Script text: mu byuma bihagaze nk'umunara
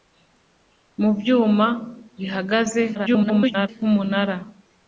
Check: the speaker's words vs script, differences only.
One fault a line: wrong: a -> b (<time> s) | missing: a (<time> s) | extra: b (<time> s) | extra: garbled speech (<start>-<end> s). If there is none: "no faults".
extra: garbled speech (2.9-3.7 s)